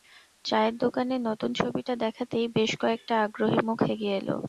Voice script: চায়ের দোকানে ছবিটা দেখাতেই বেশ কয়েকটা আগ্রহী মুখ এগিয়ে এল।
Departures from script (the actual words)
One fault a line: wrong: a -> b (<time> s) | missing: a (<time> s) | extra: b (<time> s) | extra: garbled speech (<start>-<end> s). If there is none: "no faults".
extra: নতুন (1.3 s)